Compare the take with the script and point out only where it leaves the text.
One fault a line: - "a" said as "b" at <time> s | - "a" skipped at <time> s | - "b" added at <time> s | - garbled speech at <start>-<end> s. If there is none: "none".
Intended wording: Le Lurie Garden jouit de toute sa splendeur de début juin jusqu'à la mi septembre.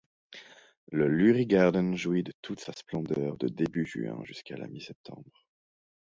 none